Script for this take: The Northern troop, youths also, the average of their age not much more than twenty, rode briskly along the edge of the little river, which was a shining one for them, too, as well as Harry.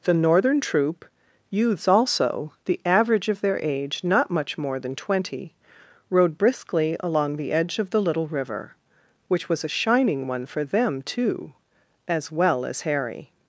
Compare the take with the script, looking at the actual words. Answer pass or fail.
pass